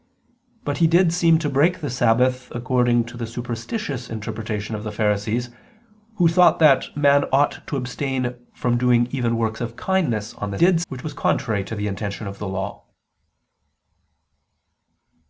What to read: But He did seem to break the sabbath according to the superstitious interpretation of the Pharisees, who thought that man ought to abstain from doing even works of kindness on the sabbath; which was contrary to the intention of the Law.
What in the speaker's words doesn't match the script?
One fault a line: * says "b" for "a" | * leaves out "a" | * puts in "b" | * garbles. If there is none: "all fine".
* says "did" for "sabbath"